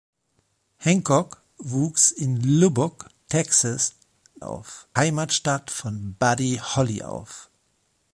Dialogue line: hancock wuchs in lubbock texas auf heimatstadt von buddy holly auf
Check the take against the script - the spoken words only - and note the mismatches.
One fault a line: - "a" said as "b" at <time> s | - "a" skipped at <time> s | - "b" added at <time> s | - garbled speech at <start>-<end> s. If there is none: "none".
none